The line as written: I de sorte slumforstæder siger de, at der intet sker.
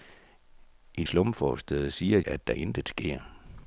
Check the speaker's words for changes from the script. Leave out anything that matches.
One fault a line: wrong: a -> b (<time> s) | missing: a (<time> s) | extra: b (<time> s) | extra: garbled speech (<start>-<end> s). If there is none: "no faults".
missing: de sorte (1.0 s)
missing: de (2.2 s)